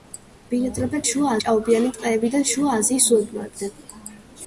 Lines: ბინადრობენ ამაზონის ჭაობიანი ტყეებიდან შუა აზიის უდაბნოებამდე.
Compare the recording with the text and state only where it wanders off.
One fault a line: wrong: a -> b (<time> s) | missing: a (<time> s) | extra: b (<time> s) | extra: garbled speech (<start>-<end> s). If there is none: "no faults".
wrong: ამაზონის -> შუა (1.1 s)